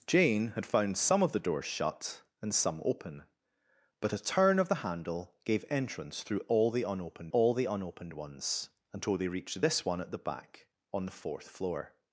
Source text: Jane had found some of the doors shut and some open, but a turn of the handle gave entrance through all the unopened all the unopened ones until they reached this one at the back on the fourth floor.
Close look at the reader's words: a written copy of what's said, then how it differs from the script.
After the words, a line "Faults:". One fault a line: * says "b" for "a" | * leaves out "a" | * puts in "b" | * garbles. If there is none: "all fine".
Jane had found some of the doors shut and some open, but a turn of the handle gave entrance through all the unopened all the unopened ones until they reached this one at the back on the fourth floor.
Faults:
all fine